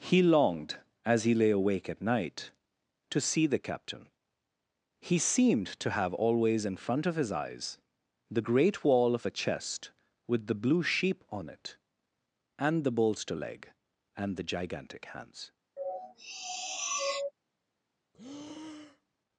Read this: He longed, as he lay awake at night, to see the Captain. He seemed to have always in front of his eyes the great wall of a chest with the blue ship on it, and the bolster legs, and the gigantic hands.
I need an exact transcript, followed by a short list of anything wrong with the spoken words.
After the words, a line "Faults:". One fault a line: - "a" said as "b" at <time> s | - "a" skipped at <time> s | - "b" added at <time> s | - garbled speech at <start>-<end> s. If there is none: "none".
He longed, as he lay awake at night, to see the Captain. He seemed to have always in front of his eyes the great wall of a chest with the blue sheep on it, and the bolster leg, and the gigantic hands.
Faults:
- "ship" said as "sheep" at 10.8 s
- "legs" said as "leg" at 13.3 s